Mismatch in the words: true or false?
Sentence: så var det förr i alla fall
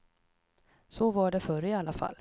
false